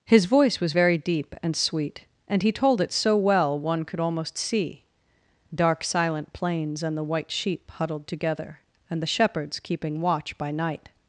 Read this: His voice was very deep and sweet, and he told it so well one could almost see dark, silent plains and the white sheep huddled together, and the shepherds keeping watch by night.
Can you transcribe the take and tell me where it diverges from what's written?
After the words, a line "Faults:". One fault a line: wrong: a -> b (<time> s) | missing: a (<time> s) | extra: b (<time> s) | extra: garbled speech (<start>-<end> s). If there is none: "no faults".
His voice was very deep and sweet, and he told it so well one could almost see dark, silent plains and the white sheep huddled together, and the shepherds keeping watch by night.
Faults:
no faults